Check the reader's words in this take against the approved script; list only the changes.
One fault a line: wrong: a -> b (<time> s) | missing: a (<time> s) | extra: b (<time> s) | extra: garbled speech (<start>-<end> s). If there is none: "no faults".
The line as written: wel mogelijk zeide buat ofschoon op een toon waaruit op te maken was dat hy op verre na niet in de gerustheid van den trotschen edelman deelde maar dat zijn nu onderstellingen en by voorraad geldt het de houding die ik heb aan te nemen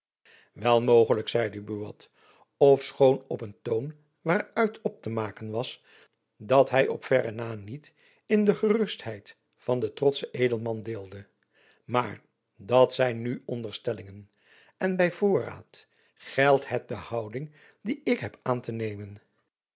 no faults